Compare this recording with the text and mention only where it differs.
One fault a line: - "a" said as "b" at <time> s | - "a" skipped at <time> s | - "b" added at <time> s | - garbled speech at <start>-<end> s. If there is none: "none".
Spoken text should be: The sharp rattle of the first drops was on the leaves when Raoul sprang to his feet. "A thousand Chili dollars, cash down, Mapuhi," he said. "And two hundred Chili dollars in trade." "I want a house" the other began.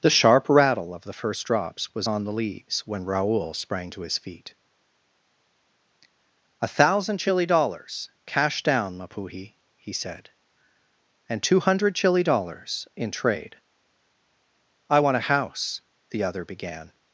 none